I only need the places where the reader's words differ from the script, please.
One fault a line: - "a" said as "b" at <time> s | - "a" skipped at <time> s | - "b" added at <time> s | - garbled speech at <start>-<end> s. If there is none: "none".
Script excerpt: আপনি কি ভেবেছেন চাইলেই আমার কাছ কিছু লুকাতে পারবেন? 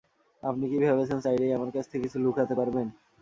- "থেকে" added at 1.9 s